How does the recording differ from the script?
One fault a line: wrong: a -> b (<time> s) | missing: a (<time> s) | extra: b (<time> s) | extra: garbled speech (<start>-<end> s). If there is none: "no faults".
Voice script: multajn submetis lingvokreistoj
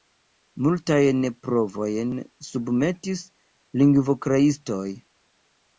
extra: provojn (1.5 s)